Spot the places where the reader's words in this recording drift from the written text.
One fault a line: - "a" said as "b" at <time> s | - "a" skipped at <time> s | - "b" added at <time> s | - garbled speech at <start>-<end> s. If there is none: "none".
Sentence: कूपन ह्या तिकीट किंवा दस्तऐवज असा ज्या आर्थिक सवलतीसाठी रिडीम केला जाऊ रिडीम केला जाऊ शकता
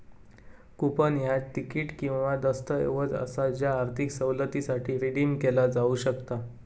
- "रिडीम केला जाऊ" skipped at 6.0 s